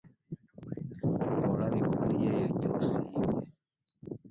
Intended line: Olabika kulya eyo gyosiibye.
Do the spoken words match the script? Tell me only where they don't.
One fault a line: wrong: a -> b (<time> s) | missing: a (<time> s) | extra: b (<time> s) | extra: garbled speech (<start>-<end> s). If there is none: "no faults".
no faults